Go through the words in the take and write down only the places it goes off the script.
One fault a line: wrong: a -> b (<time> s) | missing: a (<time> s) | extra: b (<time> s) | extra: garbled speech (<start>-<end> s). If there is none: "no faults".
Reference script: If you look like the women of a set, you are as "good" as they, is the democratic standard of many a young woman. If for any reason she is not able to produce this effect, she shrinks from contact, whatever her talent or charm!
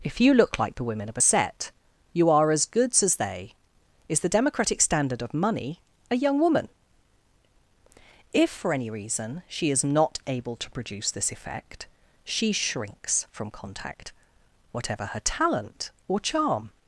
wrong: good -> goods (2.6 s)
wrong: many -> money (5.3 s)